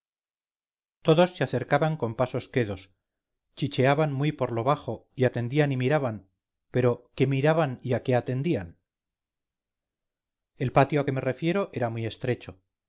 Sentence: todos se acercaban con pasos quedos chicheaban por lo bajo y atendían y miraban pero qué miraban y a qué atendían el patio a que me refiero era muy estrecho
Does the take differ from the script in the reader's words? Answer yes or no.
yes